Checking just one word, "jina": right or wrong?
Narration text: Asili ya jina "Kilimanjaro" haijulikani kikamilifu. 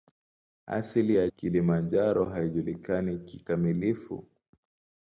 wrong